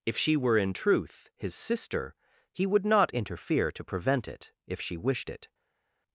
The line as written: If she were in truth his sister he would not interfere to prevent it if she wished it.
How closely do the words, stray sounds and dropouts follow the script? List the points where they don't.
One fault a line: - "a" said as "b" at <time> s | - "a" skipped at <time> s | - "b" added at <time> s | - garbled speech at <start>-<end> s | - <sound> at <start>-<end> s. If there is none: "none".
none